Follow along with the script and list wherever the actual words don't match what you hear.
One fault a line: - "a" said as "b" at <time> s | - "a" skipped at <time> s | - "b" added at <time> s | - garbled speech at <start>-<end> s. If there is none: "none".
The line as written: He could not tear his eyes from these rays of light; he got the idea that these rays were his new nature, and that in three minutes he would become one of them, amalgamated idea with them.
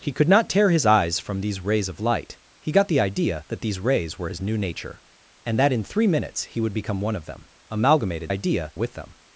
none